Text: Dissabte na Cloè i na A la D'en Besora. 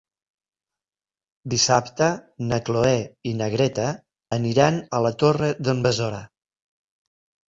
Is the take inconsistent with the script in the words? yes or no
yes